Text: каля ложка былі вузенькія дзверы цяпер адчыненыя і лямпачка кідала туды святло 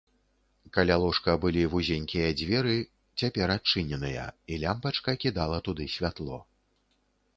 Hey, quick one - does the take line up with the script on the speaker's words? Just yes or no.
yes